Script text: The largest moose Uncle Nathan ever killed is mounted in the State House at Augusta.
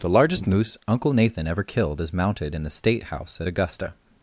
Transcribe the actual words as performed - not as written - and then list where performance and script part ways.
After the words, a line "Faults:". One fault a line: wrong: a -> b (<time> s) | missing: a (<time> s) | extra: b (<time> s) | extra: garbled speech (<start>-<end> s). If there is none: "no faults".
The largest moose Uncle Nathan ever killed is mounted in the State House at Augusta.
Faults:
no faults